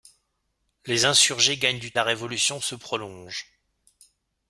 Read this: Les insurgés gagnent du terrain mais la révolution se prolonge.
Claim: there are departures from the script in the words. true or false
true